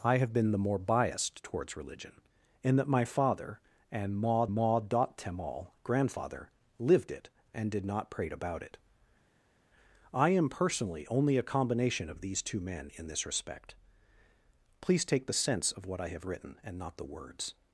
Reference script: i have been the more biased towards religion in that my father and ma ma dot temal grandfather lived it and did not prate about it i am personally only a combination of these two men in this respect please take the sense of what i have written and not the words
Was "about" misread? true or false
false